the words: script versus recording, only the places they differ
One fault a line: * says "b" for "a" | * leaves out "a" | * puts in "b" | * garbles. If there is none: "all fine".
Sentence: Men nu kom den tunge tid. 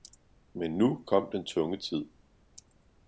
all fine